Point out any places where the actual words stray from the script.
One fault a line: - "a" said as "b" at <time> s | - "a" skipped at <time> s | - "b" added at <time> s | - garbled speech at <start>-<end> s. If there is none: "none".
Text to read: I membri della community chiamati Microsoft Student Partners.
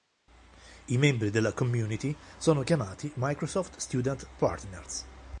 - "sono" added at 2.4 s